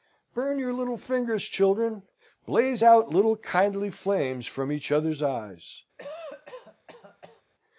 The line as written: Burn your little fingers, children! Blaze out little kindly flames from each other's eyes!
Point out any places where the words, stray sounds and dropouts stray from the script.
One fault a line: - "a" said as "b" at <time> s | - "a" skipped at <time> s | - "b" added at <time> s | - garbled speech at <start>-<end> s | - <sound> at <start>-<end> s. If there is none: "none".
- cough at 6.0-7.4 s